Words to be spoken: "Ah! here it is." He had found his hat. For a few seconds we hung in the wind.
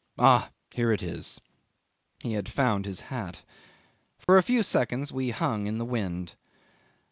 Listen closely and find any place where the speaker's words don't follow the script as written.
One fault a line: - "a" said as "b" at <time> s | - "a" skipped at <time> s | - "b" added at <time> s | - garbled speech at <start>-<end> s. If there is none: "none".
none